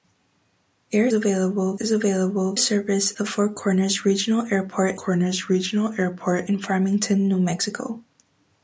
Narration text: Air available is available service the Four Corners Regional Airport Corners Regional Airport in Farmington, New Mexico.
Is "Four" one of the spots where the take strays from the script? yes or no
no